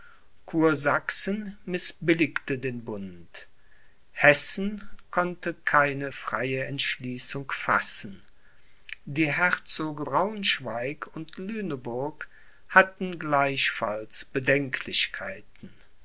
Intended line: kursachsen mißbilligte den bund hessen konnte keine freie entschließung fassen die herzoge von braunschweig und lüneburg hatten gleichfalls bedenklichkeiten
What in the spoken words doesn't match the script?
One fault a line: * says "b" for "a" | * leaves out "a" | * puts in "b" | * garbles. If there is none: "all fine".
* leaves out "von"